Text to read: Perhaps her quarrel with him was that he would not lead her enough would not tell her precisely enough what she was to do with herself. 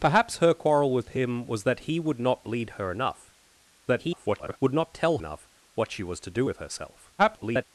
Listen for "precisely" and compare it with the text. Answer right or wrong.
wrong